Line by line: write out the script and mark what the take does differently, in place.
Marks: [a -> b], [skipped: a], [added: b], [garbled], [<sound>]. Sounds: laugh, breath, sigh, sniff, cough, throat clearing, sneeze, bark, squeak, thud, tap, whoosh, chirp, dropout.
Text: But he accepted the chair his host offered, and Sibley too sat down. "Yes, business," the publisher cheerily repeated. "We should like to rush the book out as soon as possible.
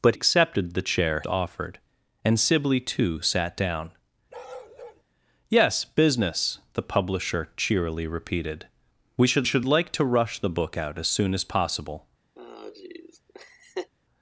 But [skipped: he] accepted the chair [skipped: his host] offered, and Sibley too sat down. [bark] "Yes, business," the publisher cheerily repeated. "We should [added: should] like to rush the book out as soon as possible. [laugh]